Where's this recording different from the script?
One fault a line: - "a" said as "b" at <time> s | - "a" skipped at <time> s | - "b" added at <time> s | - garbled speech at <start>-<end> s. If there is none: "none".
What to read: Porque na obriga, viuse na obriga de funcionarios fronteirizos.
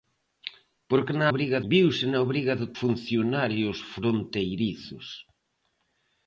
none